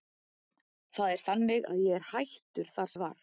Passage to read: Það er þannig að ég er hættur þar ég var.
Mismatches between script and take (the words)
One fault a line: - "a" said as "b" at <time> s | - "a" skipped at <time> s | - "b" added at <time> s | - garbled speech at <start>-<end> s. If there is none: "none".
none